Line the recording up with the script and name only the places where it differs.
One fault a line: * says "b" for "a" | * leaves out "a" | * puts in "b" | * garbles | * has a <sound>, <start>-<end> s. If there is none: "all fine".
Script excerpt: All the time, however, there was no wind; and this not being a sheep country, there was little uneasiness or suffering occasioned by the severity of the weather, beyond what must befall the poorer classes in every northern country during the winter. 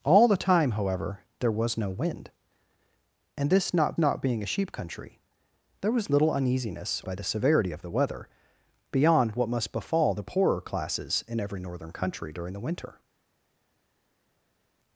* puts in "not"
* leaves out "or suffering occasioned"